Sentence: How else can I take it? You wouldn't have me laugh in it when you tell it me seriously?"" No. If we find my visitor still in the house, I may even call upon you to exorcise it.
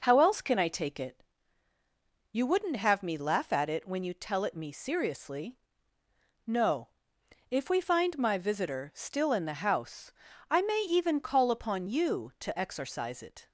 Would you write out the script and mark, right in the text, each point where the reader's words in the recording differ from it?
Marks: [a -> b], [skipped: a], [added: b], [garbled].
How else can I take it? You wouldn't have me laugh [in -> at] it when you tell it me seriously?"" No. If we find my visitor still in the house, I may even call upon you to exorcise it.